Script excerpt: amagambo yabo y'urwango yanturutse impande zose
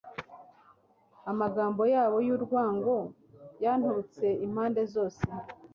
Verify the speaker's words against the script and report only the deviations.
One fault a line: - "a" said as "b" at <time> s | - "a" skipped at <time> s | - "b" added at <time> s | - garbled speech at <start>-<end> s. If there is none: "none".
none